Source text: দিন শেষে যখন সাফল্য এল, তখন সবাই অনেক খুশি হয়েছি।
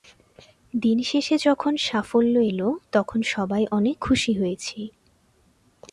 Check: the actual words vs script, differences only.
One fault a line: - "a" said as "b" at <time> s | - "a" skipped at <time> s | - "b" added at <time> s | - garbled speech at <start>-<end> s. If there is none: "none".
none